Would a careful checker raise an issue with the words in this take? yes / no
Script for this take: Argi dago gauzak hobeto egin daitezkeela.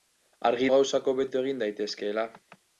yes